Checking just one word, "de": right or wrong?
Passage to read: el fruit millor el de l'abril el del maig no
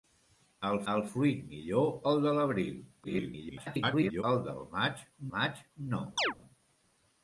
right